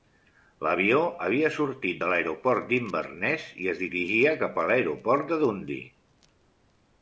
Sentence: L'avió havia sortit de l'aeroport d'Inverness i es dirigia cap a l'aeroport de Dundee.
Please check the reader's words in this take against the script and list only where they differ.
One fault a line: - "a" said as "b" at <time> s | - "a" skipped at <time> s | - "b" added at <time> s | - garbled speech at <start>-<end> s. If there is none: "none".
none